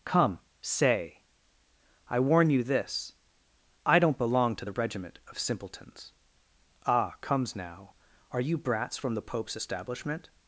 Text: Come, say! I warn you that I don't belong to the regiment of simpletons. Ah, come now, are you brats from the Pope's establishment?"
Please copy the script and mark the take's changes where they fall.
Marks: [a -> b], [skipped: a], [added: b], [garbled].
Come, say! I warn you [that -> this] I don't belong to the regiment of simpletons. Ah, [come -> comes] now, are you brats from the Pope's establishment?"